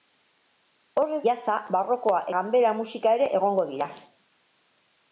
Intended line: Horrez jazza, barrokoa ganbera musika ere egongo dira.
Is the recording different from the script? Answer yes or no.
no